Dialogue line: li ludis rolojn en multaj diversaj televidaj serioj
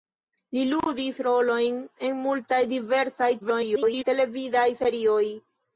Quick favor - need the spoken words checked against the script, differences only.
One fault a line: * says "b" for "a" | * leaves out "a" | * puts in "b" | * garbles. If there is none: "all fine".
* garbles